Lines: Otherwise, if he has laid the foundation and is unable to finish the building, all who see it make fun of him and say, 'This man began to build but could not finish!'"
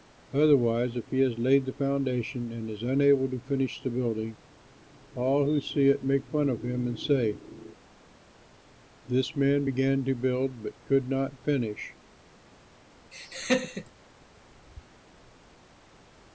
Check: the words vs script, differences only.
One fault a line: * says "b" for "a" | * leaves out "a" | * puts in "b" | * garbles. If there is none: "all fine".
all fine